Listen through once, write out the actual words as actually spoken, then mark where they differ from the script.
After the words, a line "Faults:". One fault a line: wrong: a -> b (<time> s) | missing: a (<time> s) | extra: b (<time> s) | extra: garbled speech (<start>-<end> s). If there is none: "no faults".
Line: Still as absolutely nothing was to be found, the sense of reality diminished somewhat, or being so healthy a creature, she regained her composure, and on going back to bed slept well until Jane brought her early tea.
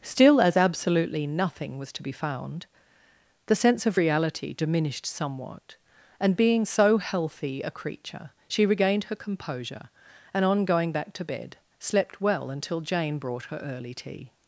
Still as absolutely nothing was to be found, the sense of reality diminished somewhat, and being so healthy a creature, she regained her composure, and on going back to bed slept well until Jane brought her early tea.
Faults:
wrong: or -> and (6.2 s)